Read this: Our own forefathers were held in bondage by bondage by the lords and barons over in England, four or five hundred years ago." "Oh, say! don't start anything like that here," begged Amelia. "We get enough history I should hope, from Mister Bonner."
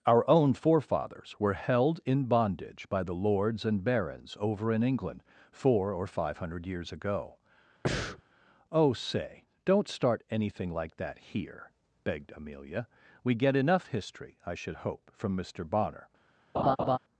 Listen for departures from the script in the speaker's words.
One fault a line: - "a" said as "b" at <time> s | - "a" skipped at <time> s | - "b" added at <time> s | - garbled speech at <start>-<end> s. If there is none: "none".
- "bondage by" skipped at 3.0 s